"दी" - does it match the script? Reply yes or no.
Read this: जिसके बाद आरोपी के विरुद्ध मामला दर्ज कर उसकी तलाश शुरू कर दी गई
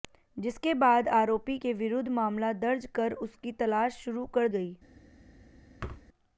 no